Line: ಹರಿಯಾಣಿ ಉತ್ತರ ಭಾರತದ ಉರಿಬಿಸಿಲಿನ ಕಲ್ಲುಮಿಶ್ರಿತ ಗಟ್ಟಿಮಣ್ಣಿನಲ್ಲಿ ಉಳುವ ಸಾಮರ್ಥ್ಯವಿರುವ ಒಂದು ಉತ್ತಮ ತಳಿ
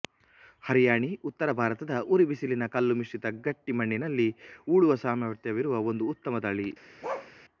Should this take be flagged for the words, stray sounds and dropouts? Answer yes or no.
yes